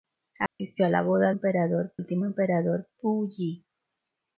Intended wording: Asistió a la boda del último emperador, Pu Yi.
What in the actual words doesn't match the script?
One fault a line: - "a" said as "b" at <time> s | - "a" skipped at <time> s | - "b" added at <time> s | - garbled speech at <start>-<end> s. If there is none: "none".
- "del" said as "emperador" at 1.3 s